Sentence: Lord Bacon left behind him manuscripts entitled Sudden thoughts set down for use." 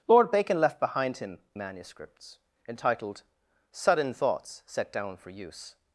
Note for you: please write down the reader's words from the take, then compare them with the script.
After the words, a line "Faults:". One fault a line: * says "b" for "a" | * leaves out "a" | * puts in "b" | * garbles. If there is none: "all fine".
Lord Bacon left behind him manuscripts entitled Sudden thoughts set down for use."
Faults:
all fine